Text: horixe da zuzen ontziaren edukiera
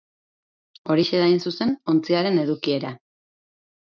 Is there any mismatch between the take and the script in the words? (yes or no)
yes